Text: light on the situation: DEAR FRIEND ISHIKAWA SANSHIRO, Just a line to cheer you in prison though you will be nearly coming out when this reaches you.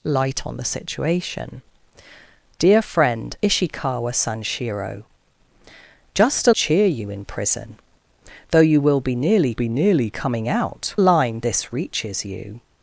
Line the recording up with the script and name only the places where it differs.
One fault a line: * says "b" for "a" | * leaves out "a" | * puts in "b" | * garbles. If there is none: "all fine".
* leaves out "line to"
* puts in "be nearly"
* says "line" for "when"